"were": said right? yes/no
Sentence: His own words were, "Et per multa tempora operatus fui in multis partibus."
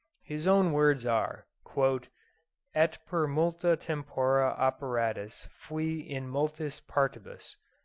no